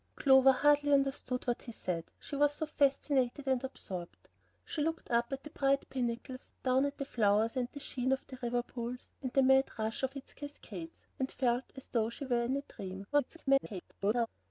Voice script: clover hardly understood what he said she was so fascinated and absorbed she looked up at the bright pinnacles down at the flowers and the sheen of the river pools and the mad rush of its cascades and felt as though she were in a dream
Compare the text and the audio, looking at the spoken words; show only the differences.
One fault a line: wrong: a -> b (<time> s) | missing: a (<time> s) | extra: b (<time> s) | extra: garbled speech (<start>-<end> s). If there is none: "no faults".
extra: garbled speech (13.1-14.3 s)